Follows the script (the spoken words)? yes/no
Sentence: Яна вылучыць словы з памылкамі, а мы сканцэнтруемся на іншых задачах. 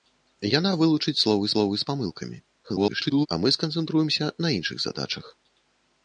no